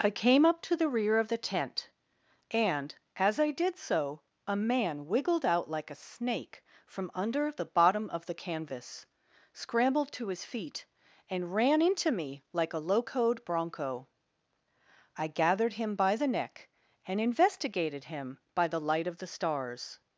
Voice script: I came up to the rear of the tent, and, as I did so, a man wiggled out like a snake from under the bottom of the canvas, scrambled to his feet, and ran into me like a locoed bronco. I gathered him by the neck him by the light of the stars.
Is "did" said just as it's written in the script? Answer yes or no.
yes